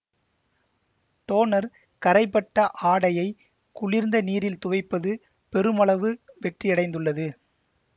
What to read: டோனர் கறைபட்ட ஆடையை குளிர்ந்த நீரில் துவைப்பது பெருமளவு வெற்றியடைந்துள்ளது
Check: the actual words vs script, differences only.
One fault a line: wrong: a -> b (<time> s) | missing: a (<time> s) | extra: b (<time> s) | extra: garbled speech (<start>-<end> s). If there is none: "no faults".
no faults